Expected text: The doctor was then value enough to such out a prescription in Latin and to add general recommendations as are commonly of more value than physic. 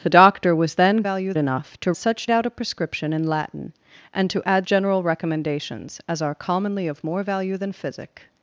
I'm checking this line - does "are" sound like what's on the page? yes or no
yes